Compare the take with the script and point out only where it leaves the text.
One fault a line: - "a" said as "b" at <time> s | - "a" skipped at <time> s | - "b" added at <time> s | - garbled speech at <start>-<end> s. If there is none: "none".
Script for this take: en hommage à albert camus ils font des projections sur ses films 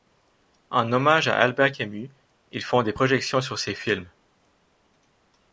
none